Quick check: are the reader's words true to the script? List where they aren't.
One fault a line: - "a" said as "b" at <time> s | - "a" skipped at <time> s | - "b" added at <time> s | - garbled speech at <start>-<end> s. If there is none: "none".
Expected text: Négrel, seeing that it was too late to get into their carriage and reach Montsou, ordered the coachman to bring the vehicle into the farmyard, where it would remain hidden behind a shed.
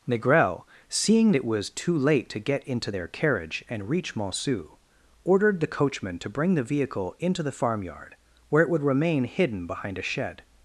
- "that" skipped at 1.3 s